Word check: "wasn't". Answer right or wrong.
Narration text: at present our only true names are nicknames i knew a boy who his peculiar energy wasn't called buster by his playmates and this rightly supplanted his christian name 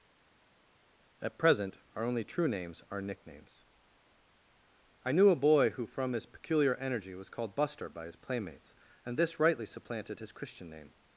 wrong